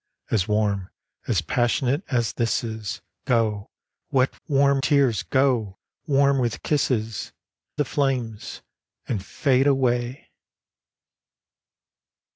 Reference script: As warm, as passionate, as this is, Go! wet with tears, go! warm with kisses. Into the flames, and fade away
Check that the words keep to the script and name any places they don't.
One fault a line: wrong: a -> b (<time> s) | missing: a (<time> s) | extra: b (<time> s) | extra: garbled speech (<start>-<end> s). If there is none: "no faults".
wrong: with -> warm (4.5 s)
missing: Into (7.3 s)